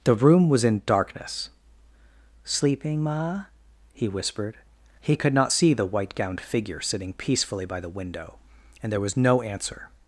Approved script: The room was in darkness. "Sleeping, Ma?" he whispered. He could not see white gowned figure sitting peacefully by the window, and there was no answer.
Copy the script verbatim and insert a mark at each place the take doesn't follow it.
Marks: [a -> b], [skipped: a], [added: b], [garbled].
The room was in darkness. "Sleeping, Ma?" he whispered. He could not see [added: the] white gowned figure sitting peacefully by the window, and there was no answer.